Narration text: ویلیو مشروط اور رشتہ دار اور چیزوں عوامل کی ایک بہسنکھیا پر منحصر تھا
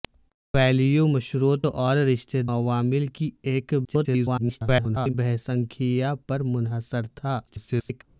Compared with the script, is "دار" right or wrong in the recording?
wrong